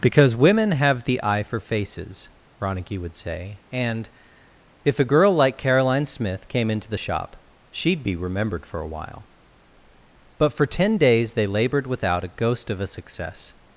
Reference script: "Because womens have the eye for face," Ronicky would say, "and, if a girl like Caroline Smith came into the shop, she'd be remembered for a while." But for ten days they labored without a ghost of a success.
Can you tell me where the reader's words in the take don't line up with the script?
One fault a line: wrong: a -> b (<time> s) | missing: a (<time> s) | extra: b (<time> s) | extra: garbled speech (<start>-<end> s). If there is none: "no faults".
wrong: womens -> women (0.3 s)
wrong: face -> faces (1.6 s)